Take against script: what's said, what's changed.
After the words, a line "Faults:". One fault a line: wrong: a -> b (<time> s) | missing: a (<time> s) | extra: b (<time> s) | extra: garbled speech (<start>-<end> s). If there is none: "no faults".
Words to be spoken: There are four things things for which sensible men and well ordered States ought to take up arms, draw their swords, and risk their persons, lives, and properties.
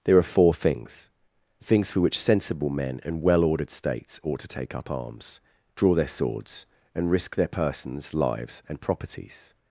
There are four things things for which sensible men and well ordered States ought to take up arms, draw their swords, and risk their persons, lives, and properties.
Faults:
no faults